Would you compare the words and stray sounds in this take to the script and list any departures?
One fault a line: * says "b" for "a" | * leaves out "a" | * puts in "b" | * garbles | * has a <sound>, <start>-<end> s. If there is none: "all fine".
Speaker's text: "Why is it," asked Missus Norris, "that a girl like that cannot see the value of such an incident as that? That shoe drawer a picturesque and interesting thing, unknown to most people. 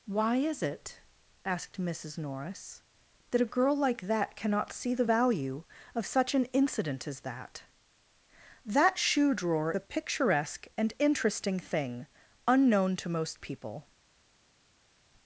all fine